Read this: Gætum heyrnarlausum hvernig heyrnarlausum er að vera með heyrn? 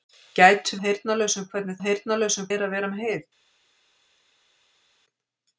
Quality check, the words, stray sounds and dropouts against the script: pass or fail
pass